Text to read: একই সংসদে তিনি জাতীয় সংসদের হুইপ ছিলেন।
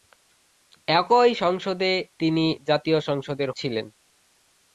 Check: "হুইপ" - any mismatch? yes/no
yes